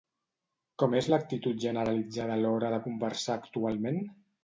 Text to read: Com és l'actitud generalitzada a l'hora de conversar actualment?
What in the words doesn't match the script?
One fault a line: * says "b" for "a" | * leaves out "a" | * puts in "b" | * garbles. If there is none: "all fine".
all fine